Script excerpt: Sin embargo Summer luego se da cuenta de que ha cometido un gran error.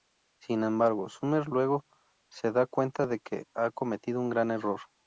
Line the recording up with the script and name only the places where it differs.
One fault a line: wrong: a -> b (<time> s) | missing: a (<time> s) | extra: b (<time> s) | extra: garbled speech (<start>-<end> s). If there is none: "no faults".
no faults